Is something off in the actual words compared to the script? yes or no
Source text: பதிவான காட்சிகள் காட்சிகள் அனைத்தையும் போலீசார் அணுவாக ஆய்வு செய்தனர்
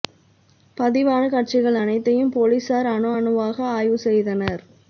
yes